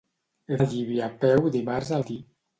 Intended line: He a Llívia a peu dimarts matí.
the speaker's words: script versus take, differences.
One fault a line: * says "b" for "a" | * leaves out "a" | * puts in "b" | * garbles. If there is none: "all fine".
all fine